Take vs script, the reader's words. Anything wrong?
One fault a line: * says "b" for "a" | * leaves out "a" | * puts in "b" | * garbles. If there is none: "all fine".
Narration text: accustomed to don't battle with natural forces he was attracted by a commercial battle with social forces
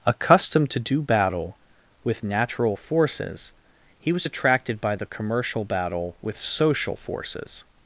* says "do" for "don't"
* says "the" for "a"